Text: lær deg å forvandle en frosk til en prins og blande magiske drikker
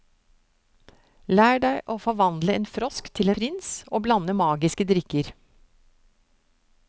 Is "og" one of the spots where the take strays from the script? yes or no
no